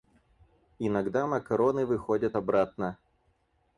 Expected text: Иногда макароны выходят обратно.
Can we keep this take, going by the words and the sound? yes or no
yes